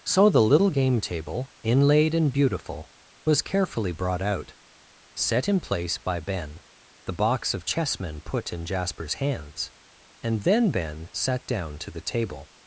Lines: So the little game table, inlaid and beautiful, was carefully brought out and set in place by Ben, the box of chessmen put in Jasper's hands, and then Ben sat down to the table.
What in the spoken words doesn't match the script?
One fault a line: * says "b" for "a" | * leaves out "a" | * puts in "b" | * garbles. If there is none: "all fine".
* leaves out "and"